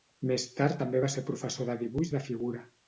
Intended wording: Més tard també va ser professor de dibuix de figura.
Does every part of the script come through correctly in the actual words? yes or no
yes